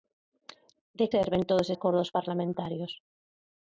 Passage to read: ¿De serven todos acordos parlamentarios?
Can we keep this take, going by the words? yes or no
yes